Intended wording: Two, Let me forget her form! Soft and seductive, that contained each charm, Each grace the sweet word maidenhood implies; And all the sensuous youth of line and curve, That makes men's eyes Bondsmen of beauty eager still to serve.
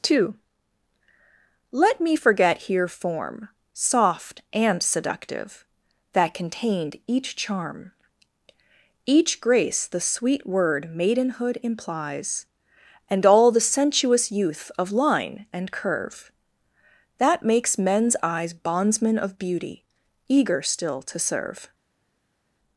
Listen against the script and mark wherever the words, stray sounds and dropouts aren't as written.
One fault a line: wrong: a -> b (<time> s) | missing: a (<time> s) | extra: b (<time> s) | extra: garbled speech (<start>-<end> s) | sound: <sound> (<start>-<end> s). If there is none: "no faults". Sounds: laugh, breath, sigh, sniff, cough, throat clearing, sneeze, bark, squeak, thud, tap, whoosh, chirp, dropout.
wrong: her -> here (2.6 s)